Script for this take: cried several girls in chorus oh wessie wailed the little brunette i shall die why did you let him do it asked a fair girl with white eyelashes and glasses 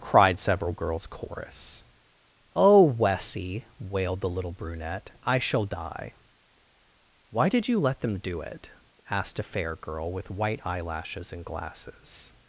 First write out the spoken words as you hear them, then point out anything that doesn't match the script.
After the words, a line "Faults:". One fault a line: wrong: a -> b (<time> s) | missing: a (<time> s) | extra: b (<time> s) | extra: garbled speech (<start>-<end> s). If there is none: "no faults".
cried several girls chorus oh wessie wailed the little brunette i shall die why did you let them do it asked a fair girl with white eyelashes and glasses
Faults:
missing: in (1.1 s)
wrong: him -> them (8.0 s)